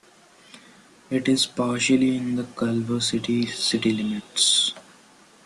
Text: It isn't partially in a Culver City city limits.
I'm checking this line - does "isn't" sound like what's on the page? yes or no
no